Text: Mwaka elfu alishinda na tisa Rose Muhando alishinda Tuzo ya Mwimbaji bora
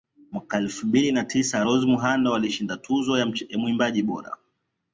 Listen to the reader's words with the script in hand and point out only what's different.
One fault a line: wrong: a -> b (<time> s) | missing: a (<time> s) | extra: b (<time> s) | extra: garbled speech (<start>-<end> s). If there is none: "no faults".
wrong: alishinda -> mbili (0.9 s)